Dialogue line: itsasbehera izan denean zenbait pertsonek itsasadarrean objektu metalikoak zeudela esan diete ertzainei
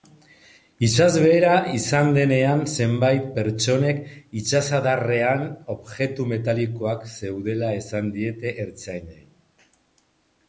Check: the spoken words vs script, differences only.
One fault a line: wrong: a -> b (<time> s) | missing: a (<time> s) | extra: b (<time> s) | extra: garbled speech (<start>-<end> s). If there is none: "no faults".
no faults